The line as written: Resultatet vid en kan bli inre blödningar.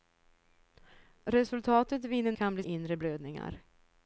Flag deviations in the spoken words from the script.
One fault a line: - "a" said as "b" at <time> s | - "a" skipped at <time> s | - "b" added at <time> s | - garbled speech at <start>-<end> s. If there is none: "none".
none